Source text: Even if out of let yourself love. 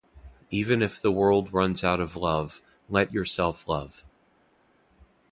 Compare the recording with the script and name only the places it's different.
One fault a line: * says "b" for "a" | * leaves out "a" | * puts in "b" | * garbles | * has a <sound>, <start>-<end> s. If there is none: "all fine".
* puts in "the world runs"
* puts in "love"